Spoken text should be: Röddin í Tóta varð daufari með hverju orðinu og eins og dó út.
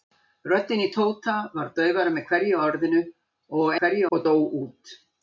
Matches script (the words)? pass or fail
fail